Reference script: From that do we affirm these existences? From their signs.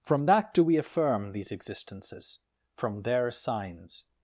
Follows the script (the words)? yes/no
yes